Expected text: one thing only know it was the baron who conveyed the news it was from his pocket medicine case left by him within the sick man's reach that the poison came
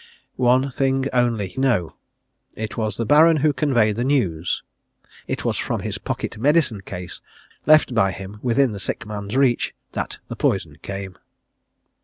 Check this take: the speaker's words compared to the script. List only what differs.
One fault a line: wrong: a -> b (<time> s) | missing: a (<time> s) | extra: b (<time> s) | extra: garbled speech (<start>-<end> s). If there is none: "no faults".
no faults